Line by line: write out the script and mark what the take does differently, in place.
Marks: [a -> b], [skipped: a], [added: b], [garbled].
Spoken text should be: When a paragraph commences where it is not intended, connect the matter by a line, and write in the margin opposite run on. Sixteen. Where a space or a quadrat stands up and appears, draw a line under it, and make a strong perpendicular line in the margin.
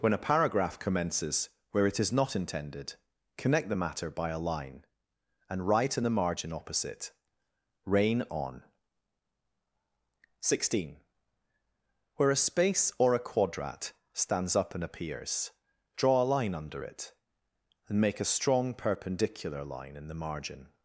When a paragraph commences where it is not intended, connect the matter by a line, and write in the margin opposite [run -> rain] on. Sixteen. Where a space or a quadrat stands up and appears, draw a line under it, and make a strong perpendicular line in the margin.